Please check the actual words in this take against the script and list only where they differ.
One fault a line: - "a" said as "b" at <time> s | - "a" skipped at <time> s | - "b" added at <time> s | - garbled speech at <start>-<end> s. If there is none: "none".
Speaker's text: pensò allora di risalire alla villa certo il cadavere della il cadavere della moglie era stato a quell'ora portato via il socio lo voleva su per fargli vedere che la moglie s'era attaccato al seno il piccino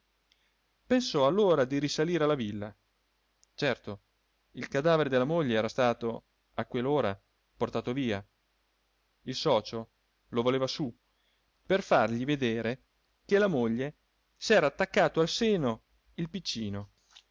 - "il cadavere della" skipped at 5.3 s